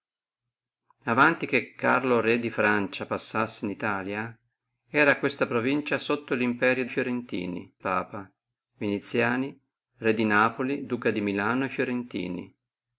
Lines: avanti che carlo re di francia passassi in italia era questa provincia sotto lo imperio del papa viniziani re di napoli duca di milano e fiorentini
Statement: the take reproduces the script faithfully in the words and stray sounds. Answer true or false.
false